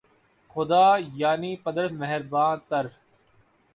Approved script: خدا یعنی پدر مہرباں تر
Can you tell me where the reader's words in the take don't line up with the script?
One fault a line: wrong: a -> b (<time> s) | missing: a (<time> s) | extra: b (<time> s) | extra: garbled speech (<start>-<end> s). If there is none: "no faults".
no faults